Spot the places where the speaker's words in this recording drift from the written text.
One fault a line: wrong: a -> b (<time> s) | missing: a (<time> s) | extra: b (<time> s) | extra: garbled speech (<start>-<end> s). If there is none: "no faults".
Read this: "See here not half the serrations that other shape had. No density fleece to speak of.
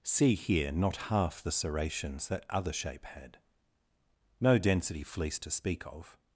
no faults